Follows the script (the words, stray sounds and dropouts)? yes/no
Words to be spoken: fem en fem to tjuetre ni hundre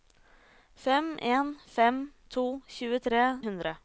no